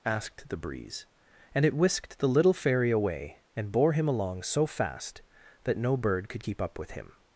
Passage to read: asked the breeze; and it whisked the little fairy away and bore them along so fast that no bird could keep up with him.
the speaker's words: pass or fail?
fail